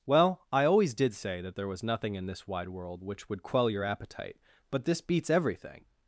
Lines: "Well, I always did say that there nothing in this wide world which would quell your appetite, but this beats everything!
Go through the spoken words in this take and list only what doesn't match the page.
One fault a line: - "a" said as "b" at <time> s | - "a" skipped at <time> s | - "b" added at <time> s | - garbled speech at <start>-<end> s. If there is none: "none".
- "was" added at 1.7 s